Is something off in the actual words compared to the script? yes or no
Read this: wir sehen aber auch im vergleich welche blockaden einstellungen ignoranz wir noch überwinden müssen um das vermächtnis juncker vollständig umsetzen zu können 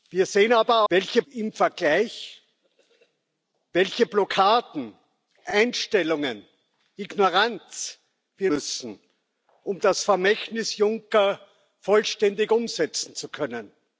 yes